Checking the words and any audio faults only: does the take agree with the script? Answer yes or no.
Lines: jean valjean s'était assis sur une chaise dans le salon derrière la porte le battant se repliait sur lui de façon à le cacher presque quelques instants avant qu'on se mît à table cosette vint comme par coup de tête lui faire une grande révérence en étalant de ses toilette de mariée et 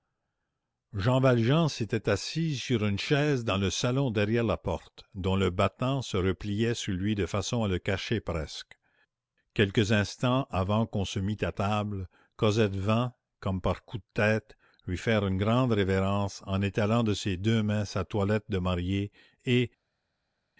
no